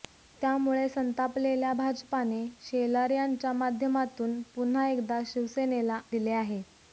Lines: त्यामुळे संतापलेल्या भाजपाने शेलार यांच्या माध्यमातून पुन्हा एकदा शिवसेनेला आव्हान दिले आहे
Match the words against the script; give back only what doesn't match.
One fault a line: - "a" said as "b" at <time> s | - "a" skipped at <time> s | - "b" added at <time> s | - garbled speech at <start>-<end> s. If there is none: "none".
- "आव्हान" skipped at 6.0 s